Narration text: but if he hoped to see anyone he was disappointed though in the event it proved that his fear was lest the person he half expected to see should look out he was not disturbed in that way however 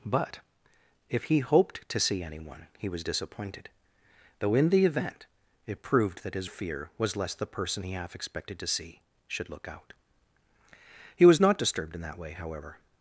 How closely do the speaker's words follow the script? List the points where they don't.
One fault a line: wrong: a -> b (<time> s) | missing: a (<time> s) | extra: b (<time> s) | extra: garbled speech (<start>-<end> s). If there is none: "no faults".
no faults